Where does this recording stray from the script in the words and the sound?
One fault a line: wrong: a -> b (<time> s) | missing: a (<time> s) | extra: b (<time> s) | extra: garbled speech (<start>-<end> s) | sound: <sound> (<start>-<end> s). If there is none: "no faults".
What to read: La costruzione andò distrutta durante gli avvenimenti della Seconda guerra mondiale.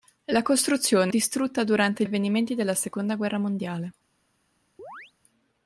missing: andò (1.1 s)
missing: gli (2.0 s)
sound: chirp (4.8-5.1 s)